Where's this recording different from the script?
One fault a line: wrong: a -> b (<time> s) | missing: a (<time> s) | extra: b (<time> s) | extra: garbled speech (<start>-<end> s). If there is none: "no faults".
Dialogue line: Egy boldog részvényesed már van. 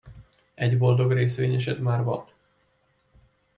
no faults